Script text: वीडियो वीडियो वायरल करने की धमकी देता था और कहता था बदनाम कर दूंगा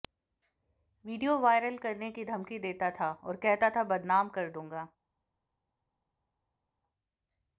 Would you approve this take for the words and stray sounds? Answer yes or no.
no